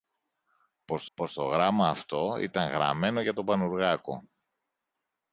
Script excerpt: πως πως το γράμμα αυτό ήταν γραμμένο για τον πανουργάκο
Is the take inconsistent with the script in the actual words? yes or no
no